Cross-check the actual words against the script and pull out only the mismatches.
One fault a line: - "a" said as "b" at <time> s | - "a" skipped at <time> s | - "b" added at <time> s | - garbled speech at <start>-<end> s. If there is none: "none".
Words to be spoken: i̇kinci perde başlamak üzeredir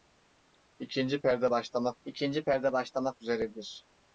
- "i̇kinci perde başlamak" added at 2.0 s